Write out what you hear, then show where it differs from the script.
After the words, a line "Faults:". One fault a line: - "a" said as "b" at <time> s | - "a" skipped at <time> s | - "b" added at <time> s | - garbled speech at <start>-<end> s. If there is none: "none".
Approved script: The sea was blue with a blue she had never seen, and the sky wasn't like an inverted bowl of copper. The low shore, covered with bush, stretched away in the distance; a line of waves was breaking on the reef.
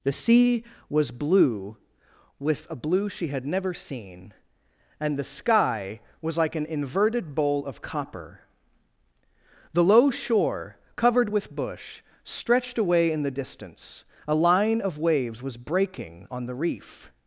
The sea was blue with a blue she had never seen, and the sky was like an inverted bowl of copper. The low shore, covered with bush, stretched away in the distance; a line of waves was breaking on the reef.
Faults:
- "wasn't" said as "was" at 6.2 s